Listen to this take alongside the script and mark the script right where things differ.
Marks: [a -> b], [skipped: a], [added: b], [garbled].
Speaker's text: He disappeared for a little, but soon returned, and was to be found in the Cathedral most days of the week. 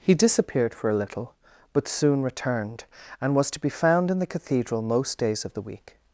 He disappeared for a little, but soon returned, and was to be found in the Cathedral most days of the week.